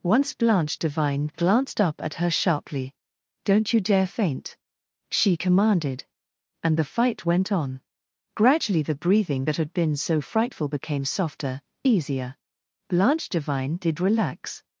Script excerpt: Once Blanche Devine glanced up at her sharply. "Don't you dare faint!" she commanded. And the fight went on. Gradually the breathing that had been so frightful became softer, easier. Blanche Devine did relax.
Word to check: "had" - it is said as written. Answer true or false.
true